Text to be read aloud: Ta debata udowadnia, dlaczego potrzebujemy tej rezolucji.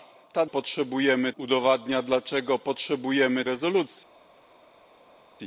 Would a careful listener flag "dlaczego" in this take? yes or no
no